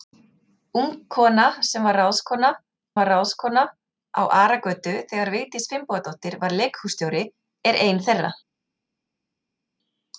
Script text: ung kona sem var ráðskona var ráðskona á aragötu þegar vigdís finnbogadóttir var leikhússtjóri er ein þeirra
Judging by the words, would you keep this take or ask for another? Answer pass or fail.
pass